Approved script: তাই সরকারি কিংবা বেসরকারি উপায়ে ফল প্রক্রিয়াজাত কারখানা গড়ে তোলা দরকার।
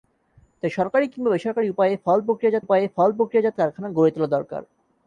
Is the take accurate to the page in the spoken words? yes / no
no